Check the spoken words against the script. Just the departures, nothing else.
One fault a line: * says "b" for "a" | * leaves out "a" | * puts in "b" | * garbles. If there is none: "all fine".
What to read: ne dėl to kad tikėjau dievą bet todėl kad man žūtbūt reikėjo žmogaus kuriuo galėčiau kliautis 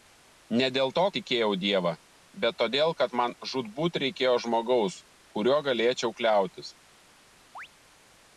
* leaves out "kad"